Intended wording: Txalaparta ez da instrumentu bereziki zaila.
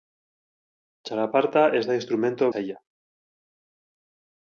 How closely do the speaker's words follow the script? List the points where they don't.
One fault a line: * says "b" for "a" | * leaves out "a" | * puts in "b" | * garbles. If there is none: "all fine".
* leaves out "bereziki"